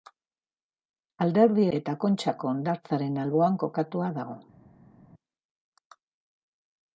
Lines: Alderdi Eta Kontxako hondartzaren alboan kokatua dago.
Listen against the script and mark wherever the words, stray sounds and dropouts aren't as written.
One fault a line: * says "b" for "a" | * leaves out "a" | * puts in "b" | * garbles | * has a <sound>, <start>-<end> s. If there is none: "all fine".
all fine